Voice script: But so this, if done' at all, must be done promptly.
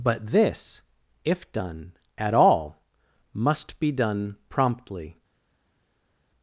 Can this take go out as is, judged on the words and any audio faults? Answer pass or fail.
fail